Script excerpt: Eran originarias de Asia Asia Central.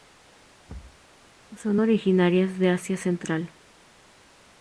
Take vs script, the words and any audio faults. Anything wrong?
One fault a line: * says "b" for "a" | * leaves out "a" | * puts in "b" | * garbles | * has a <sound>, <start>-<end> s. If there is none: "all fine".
* has a thud, 0.7-1.1 s
* says "Son" for "Eran"
* leaves out "Asia"